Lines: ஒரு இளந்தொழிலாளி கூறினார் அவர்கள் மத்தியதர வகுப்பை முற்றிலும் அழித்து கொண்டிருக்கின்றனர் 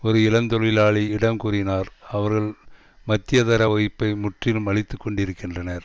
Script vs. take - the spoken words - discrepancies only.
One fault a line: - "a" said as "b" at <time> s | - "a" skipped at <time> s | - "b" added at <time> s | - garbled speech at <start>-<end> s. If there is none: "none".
- "இடம்" added at 1.1 s